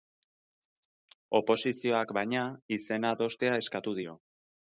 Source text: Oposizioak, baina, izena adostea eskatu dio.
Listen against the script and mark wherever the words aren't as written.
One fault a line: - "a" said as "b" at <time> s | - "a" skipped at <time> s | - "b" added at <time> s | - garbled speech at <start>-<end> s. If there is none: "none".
none